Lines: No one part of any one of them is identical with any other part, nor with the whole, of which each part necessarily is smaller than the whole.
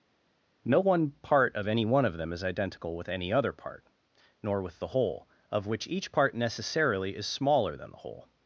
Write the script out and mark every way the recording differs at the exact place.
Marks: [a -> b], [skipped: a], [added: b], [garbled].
No one part of any one of them is identical with any other part, nor with the whole, of which each part necessarily is smaller than the whole.